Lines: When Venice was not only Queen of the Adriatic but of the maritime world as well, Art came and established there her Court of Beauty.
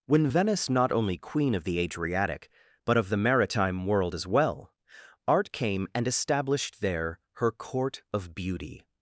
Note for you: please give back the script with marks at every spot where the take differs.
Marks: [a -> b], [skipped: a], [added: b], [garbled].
When Venice [skipped: was] not only Queen of the Adriatic but of the maritime world as well, Art came and established there her Court of Beauty.